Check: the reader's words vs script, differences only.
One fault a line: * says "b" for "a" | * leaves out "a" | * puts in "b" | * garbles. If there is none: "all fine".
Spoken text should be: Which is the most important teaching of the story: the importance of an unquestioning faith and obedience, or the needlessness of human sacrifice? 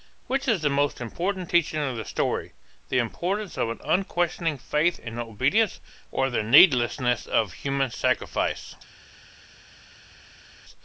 all fine